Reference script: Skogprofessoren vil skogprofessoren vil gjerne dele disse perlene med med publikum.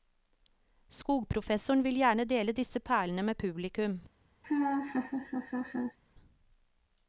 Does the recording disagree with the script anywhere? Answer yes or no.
yes